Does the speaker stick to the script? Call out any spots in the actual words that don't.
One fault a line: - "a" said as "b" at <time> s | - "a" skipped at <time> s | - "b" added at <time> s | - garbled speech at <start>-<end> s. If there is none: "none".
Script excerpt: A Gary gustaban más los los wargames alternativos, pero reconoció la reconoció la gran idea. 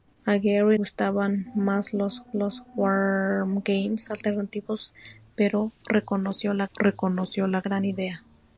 none